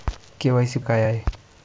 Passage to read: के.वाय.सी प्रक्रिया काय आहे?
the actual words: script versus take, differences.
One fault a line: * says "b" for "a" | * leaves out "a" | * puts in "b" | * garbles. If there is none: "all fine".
* leaves out "प्रक्रिया"